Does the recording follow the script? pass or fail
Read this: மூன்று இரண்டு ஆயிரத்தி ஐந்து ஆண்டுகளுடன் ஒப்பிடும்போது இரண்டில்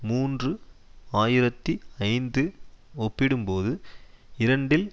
fail